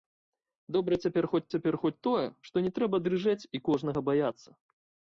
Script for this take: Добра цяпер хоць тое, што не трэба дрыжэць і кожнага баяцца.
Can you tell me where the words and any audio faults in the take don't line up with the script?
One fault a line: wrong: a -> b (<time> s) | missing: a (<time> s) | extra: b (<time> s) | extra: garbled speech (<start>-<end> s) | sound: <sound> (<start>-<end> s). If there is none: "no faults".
extra: цяпер хоць (1.5 s)